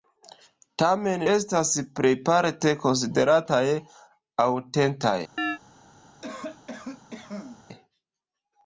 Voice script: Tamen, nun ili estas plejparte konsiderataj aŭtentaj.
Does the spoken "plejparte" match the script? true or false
true